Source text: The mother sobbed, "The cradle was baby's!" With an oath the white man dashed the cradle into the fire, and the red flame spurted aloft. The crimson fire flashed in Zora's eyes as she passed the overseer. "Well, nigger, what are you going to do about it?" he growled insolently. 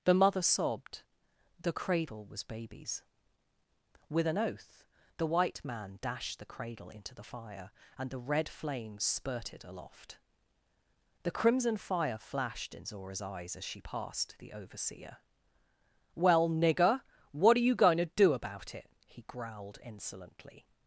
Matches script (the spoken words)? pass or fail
pass